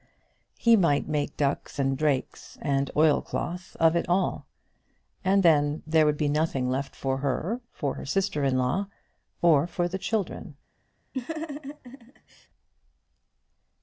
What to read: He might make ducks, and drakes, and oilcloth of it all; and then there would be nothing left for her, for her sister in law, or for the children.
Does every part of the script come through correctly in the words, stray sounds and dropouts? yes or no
no